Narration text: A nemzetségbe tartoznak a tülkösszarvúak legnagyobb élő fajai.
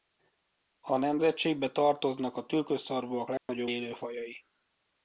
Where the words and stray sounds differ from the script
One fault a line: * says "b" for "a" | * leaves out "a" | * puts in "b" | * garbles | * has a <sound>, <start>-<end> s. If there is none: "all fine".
* has a dropout, 3.4-3.5 s